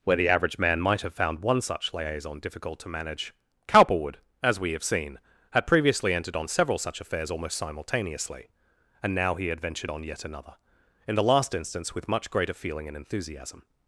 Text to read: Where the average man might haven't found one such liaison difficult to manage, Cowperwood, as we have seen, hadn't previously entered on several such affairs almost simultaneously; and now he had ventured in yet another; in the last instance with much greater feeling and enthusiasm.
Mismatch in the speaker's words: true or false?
true